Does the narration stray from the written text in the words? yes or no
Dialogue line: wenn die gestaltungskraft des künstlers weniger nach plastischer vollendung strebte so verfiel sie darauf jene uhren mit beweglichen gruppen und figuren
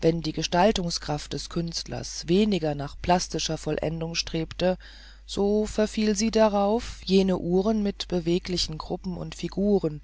no